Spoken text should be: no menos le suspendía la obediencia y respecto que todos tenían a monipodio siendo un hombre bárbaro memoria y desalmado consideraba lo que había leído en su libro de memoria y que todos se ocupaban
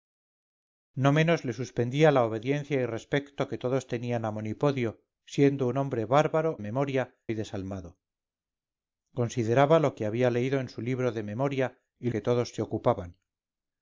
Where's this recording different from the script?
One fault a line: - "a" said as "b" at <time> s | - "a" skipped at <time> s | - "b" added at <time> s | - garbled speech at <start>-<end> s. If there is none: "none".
none